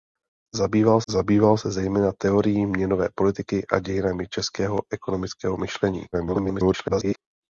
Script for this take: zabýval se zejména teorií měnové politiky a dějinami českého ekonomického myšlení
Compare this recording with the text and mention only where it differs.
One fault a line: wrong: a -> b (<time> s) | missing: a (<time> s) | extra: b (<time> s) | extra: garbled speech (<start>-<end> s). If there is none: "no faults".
extra: zabýval (1.1 s)
extra: garbled speech (6.1-7.2 s)